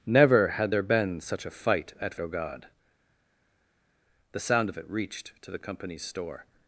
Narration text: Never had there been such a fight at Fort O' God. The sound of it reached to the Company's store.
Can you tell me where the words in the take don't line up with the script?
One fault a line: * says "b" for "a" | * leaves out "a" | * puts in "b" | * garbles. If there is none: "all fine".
* leaves out "Fort"